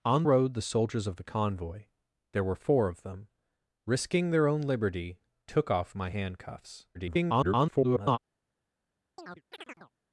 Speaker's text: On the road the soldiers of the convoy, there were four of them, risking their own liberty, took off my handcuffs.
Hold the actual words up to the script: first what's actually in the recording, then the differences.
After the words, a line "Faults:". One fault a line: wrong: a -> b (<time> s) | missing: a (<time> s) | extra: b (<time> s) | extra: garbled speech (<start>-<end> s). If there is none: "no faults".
On road the soldiers of the convoy, there were four of them, risking their own liberty, took off my handcuffs. [garbled]
Faults:
missing: the (0.2 s)
extra: garbled speech (6.9-8.2 s)